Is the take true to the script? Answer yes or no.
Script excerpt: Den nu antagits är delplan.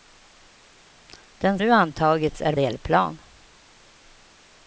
yes